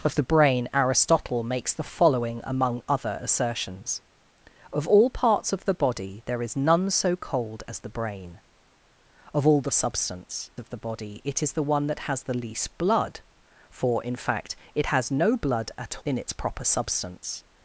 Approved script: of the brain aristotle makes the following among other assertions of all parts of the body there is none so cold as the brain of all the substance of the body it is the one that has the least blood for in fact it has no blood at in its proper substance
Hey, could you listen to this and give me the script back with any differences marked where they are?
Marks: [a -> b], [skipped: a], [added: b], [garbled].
of the brain aristotle makes the following among other assertions of all parts of the body there is none so cold as the brain of all the substance of the body it is the one that has the least blood for in fact it has no blood at in its proper substance